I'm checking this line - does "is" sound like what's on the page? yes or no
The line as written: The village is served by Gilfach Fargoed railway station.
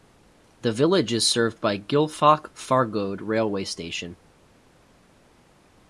yes